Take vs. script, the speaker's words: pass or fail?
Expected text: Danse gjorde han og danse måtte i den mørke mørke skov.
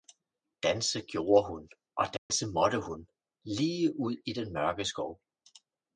fail